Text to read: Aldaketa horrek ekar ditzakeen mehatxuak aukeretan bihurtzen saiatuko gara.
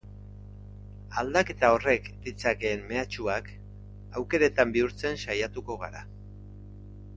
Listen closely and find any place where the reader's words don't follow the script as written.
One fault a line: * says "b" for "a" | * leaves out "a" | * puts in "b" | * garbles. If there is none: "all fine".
* leaves out "ekar"